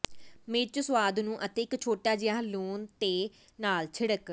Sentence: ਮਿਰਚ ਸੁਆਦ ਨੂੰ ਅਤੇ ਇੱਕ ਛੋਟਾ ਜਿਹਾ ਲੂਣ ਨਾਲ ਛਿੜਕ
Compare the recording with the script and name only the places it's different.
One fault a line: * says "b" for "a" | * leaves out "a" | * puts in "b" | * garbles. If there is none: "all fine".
* puts in "ਦੇ"